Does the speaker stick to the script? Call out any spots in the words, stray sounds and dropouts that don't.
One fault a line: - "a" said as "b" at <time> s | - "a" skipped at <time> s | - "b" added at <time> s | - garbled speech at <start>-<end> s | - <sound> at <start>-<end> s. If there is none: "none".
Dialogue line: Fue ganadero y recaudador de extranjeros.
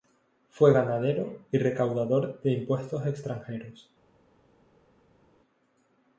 - "impuestos" added at 2.5 s